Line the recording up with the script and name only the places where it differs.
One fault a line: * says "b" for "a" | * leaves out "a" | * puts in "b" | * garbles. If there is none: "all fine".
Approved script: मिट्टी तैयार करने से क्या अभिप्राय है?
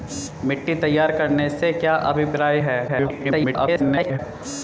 * garbles